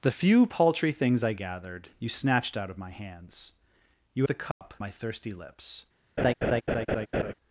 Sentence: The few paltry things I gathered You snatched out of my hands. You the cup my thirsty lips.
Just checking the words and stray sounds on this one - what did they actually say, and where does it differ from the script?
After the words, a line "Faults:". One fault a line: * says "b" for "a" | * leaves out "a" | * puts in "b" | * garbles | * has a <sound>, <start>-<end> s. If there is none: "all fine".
The few paltry things I gathered You snatched out of my hands. You the cup my thirsty lips.
Faults:
* has a dropout, 4.5-4.6 s
* has a laugh, 6.2-7.3 s